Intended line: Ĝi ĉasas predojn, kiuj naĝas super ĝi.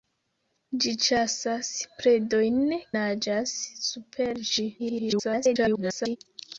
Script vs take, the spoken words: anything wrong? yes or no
yes